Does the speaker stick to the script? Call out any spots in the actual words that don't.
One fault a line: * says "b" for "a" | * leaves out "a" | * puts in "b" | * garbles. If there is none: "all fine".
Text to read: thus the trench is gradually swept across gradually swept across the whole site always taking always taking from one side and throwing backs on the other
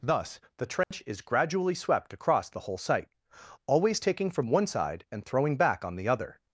* leaves out "gradually swept across"
* leaves out "always taking"
* says "back" for "backs"